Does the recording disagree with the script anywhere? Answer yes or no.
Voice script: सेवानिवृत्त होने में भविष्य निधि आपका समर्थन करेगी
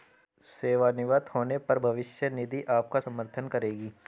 yes